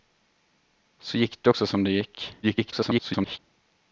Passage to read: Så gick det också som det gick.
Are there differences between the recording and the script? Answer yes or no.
yes